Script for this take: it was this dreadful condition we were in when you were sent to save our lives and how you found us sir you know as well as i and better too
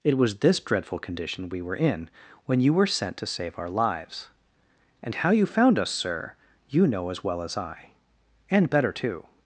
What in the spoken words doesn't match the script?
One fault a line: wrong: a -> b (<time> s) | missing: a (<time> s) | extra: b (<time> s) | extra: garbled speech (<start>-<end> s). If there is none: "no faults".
no faults